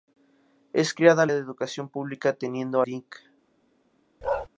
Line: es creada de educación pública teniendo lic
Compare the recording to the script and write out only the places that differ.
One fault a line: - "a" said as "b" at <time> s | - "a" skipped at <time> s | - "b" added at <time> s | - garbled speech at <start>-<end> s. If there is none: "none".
none